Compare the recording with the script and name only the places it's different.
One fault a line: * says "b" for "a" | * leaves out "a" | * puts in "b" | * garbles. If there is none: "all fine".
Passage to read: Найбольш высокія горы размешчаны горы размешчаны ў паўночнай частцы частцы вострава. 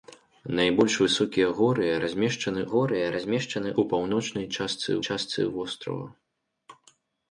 all fine